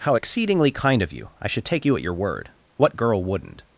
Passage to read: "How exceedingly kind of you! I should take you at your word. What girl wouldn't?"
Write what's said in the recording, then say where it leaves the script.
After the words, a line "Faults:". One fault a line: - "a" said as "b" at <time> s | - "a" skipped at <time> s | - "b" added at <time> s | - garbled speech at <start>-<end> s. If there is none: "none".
"How exceedingly kind of you! I should take you at your word. What girl wouldn't?"
Faults:
none